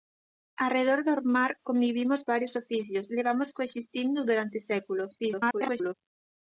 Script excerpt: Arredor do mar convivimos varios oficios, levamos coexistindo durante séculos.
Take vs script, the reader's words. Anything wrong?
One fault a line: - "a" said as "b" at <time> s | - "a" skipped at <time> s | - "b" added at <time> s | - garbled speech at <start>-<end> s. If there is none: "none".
- garbled speech at 5.2-5.9 s